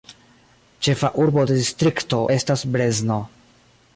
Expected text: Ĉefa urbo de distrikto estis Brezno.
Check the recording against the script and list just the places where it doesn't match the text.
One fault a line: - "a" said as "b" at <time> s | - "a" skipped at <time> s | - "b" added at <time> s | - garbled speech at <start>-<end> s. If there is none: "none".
- "estis" said as "estas" at 2.3 s